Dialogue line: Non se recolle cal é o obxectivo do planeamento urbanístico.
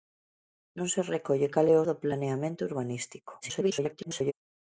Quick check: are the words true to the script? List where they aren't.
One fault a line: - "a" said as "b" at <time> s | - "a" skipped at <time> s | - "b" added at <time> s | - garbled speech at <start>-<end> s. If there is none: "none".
- "obxectivo" skipped at 1.8 s
- garbled speech at 3.4-4.3 s